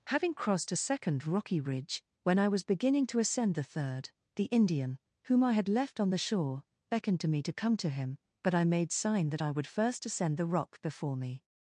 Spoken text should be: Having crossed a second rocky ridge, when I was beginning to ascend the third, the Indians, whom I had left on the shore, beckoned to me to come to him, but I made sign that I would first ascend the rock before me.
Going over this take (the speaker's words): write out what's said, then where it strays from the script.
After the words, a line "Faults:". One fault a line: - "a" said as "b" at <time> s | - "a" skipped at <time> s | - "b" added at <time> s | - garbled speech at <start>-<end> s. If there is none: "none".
Having crossed a second rocky ridge, when I was beginning to ascend the third, the Indian, whom I had left on the shore, beckoned to me to come to him, but I made sign that I would first ascend the rock before me.
Faults:
- "Indians" said as "Indian" at 4.4 s